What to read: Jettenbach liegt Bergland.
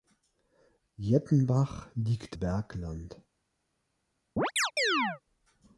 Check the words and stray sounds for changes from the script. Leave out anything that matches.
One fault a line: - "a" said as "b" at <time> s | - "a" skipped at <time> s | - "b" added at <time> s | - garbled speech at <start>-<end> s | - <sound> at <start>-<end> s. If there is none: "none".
- chirp at 4.4-5.2 s